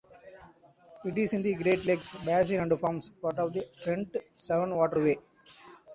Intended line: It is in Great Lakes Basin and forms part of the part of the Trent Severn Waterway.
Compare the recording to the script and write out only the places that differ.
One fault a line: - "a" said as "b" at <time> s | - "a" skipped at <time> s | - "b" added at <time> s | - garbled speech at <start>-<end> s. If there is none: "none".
- "the" added at 1.4 s
- "part of the" skipped at 3.7 s